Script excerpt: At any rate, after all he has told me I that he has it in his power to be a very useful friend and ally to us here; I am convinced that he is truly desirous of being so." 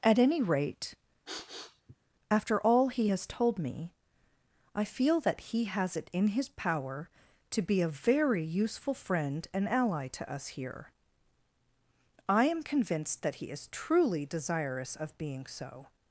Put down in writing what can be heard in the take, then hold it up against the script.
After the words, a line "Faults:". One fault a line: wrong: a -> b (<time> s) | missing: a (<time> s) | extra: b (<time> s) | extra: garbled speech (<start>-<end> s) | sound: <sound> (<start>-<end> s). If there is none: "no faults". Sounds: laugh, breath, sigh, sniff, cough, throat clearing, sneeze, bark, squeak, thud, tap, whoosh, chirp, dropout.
At any rate, after all he has told me I feel that he has it in his power to be a very useful friend and ally to us here; I am convinced that he is truly desirous of being so."
Faults:
sound: sniff (1.3-1.9 s)
extra: feel (4.8 s)